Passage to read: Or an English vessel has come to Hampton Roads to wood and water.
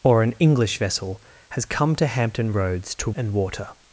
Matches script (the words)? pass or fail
fail